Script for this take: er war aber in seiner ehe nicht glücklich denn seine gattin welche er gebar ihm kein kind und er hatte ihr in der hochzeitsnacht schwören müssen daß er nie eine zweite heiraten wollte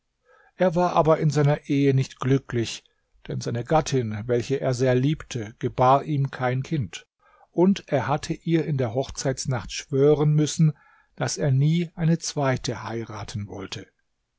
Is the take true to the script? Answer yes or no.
no